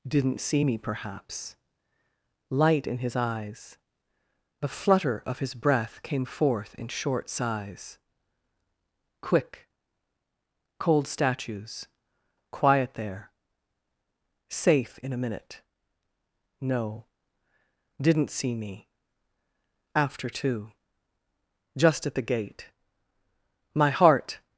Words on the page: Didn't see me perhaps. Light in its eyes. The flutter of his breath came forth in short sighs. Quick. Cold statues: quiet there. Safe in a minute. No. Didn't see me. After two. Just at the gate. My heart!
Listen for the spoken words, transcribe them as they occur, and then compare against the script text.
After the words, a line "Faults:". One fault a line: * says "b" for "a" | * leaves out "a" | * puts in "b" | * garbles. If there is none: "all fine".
Didn't see me perhaps. Light in his eyes. The flutter of his breath came forth in short sighs. Quick. Cold statues: quiet there. Safe in a minute. No. Didn't see me. After two. Just at the gate. My heart!
Faults:
* says "his" for "its"